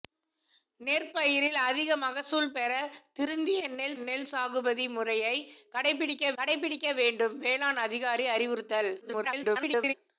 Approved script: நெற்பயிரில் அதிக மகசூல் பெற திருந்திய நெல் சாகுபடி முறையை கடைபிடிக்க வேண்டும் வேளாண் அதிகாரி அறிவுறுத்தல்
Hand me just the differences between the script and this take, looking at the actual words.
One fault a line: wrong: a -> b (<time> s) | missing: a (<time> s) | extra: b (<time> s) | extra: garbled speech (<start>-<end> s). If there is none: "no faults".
extra: நெல் (4.0 s)
extra: கடைபிடிக்க (6.4 s)
extra: garbled speech (9.0-9.9 s)